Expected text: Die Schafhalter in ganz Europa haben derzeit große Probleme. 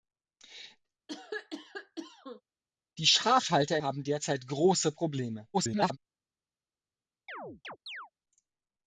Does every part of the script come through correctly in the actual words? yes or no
no